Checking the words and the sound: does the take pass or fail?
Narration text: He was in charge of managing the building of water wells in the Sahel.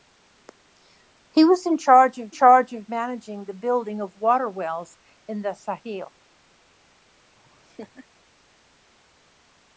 fail